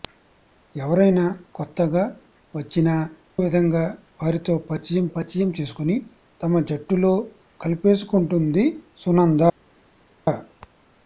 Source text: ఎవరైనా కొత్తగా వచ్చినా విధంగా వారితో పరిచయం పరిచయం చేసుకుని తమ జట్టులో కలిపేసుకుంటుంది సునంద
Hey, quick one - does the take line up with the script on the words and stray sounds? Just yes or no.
yes